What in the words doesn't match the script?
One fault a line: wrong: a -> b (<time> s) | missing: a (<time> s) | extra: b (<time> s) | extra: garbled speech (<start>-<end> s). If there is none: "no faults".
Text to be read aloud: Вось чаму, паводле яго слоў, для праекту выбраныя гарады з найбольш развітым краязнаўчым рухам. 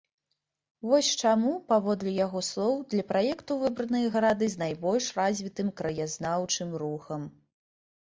no faults